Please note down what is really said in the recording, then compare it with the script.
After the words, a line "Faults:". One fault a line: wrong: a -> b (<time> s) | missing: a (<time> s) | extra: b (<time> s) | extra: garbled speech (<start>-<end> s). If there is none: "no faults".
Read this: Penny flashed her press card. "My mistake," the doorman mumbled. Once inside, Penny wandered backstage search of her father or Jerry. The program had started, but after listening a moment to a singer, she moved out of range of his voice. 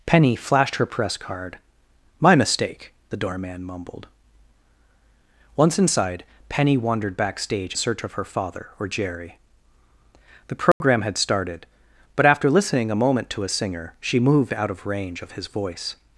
Penny flashed her press card. "My mistake," the doorman mumbled. Once inside, Penny wandered backstage search of her father or Jerry. The program had started, but after listening a moment to a singer, she moved out of range of his voice.
Faults:
no faults